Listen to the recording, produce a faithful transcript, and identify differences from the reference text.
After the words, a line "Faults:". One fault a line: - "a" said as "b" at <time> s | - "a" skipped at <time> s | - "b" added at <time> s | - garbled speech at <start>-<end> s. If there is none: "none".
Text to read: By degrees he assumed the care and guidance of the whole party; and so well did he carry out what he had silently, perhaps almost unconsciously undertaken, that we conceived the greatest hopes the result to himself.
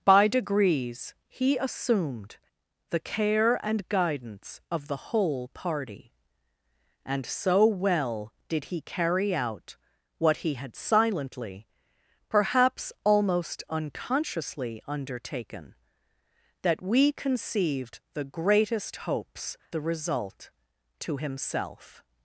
By degrees he assumed the care and guidance of the whole party; and so well did he carry out what he had silently, perhaps almost unconsciously undertaken, that we conceived the greatest hopes the result to himself.
Faults:
none